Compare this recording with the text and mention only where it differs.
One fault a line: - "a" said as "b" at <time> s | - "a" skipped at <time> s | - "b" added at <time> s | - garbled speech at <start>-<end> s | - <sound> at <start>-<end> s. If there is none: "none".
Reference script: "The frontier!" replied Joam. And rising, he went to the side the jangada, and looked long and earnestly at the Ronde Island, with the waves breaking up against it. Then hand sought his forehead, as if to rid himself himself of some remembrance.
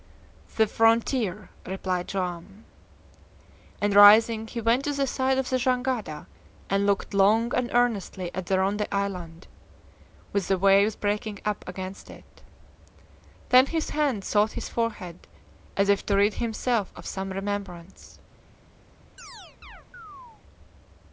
- "of" added at 5.4 s
- "his" added at 13.7 s
- "himself" skipped at 16.9 s
- chirp at 19.2-20.4 s